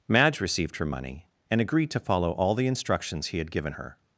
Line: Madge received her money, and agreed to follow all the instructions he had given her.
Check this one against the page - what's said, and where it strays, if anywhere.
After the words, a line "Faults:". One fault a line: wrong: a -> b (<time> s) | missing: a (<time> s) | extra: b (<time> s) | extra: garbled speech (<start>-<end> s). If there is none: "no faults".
Madge received her money, and agreed to follow all the instructions he had given her.
Faults:
no faults